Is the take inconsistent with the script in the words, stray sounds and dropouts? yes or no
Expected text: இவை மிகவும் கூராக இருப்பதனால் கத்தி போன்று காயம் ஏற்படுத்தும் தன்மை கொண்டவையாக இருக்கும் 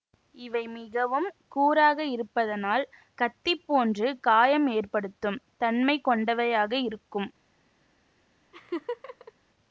yes